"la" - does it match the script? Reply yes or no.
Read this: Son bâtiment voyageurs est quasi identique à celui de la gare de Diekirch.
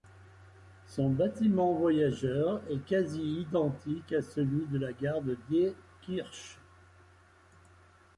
yes